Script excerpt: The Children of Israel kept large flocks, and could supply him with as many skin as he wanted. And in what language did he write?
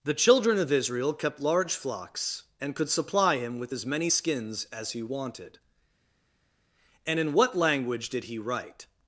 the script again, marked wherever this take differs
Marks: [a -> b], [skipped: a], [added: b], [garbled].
The Children of Israel kept large flocks, and could supply him with as many [skin -> skins] as he wanted. And in what language did he write?